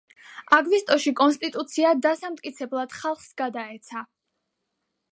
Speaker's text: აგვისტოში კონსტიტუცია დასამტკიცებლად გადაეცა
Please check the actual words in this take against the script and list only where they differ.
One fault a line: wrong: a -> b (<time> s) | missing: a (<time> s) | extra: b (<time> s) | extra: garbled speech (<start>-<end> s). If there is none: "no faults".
extra: ხალხს (3.0 s)